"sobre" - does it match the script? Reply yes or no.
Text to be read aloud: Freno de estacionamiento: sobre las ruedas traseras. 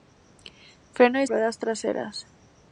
no